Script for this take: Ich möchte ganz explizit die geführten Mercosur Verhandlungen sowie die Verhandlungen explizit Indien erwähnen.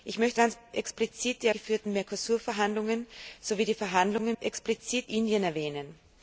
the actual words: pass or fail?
pass